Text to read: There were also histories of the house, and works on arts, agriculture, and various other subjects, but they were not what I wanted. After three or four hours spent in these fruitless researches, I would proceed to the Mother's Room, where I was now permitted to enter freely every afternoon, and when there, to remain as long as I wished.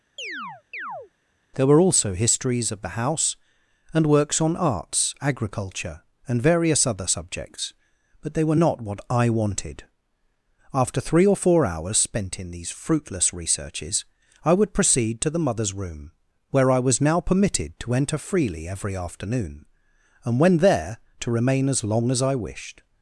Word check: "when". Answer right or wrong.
right